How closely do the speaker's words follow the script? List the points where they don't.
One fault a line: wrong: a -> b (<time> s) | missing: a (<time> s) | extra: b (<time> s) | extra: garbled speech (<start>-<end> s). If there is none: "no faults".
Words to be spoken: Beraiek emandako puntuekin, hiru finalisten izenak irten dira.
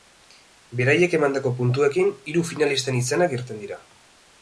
no faults